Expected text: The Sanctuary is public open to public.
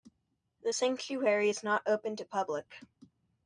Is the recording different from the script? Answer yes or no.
yes